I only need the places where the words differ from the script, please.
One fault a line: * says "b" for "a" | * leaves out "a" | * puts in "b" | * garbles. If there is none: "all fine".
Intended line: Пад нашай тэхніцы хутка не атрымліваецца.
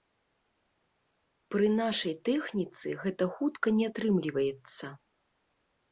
* says "Пры" for "Пад"
* puts in "гэта"